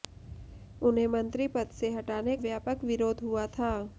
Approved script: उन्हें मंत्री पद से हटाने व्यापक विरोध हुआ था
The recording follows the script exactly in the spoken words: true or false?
true